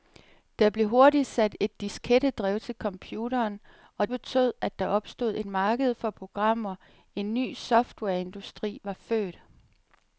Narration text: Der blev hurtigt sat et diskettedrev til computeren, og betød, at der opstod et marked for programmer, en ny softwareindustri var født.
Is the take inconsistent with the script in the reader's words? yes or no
no